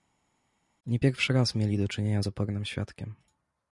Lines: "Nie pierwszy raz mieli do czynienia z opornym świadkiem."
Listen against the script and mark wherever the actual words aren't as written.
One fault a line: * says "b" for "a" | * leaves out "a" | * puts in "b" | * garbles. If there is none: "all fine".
all fine